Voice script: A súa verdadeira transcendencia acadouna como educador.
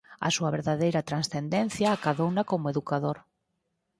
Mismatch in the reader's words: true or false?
false